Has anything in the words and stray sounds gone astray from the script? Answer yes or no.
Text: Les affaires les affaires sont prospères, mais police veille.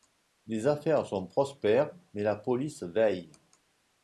yes